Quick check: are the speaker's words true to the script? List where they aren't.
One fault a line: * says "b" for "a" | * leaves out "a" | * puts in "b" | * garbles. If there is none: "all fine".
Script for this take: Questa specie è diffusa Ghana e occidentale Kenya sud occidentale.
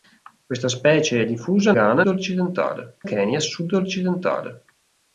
all fine